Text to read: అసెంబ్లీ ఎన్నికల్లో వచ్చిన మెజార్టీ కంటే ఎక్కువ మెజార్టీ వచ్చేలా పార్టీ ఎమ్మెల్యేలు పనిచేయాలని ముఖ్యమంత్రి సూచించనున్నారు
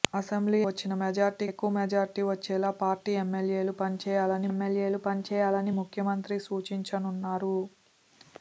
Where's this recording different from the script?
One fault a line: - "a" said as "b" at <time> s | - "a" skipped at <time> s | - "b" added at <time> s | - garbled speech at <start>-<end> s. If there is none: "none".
- "ఎన్నికల్లో" skipped at 0.6 s
- "కంటే" skipped at 1.5 s
- "ఎమ్మెల్యేలు పనిచేయాలని" added at 4.5 s